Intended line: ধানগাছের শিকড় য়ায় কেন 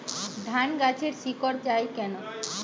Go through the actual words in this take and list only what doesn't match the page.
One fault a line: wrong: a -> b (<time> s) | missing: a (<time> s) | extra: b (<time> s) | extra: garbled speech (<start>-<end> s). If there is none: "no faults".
no faults